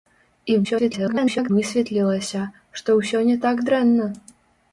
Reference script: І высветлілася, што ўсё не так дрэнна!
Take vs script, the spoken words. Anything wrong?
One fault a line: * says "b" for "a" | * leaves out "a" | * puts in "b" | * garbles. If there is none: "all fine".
* garbles